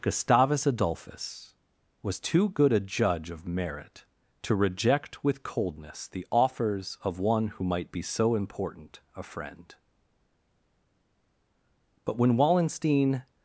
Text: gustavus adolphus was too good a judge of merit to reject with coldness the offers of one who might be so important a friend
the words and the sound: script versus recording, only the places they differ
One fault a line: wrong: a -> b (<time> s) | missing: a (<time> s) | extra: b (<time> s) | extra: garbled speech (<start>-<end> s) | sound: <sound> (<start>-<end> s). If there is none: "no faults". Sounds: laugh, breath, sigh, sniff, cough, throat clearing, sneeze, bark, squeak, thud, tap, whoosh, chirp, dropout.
extra: but when wallenstein (12.1 s)